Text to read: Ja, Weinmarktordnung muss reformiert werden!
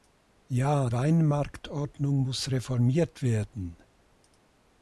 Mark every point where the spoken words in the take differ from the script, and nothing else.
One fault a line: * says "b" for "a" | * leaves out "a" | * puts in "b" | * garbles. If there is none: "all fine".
all fine